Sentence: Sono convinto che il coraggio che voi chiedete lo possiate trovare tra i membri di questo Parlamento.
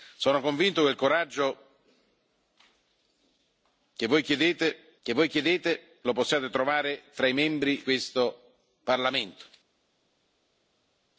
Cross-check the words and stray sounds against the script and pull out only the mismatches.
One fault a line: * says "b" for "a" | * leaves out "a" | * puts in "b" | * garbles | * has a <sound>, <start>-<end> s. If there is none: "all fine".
* puts in "che voi chiedete"
* leaves out "di"